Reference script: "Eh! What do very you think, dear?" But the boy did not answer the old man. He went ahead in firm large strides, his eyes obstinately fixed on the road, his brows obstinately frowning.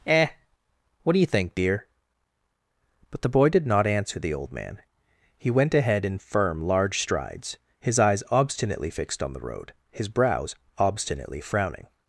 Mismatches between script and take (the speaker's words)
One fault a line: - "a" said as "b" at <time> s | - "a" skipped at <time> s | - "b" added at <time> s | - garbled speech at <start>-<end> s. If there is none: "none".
- "very" skipped at 1.2 s